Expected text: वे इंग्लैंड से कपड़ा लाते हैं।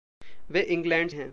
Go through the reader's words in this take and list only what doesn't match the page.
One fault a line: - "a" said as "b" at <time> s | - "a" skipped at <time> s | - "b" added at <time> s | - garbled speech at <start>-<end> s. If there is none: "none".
- "से कपड़ा लाते" skipped at 1.1 s